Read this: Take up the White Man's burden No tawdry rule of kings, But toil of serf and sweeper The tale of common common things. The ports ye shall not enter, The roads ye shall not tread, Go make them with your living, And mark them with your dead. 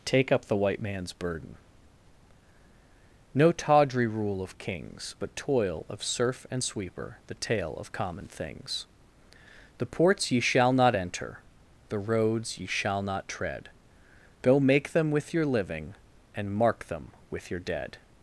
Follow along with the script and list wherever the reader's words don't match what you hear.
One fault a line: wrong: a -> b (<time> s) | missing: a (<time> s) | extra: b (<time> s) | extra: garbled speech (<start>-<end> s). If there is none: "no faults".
missing: common (8.3 s)